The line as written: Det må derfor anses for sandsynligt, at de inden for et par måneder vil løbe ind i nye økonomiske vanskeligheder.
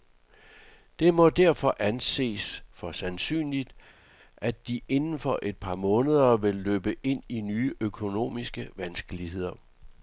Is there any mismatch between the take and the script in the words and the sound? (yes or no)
no